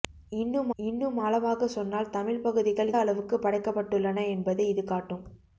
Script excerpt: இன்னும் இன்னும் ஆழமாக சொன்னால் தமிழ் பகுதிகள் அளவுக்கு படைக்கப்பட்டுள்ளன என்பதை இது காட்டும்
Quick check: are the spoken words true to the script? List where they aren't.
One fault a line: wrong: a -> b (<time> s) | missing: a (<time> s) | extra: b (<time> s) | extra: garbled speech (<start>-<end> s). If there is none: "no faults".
no faults